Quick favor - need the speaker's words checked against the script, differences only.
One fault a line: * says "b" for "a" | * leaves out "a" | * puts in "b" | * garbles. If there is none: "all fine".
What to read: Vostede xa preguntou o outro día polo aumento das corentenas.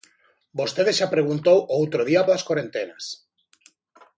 * leaves out "polo aumento"